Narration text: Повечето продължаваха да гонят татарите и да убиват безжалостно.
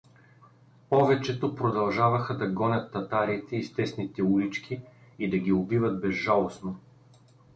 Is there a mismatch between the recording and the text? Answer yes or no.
yes